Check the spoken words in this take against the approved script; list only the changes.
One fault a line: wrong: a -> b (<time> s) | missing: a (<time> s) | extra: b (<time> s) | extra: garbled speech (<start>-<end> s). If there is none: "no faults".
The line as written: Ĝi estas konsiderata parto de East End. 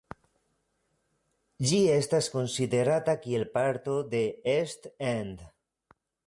extra: kiel (3.3 s)